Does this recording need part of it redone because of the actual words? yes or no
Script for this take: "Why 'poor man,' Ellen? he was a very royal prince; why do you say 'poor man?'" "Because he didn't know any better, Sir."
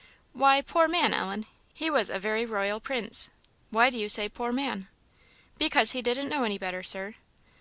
no